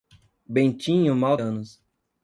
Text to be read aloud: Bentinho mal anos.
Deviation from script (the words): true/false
false